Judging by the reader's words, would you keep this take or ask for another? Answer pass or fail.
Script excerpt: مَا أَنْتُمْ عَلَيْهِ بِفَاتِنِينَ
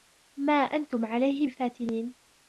pass